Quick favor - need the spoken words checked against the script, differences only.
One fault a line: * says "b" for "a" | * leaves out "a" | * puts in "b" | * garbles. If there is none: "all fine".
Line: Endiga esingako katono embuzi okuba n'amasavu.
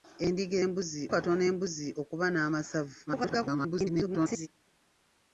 * says "embuzi" for "esingako"
* garbles